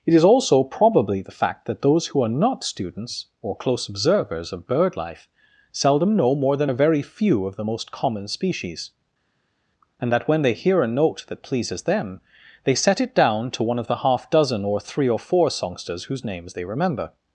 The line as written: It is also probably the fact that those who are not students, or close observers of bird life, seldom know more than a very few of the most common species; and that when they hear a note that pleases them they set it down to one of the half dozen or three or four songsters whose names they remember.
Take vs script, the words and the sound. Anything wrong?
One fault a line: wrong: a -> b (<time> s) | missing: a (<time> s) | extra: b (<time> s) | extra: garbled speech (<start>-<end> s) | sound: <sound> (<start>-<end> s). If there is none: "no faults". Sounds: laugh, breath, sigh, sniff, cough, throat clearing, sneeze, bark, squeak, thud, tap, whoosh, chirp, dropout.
no faults